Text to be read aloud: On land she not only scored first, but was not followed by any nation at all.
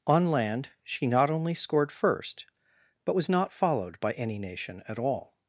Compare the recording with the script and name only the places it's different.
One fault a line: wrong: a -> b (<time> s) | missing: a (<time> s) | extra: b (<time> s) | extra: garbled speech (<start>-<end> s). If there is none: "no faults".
no faults